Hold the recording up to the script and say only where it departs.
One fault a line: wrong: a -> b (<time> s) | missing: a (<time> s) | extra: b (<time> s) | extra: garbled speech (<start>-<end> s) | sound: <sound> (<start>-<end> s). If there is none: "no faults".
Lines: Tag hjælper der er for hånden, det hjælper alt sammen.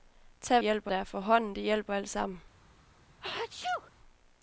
sound: sneeze (3.2-3.9 s)